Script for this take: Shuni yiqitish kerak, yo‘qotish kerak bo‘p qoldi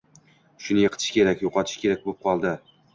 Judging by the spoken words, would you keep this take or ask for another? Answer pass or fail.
pass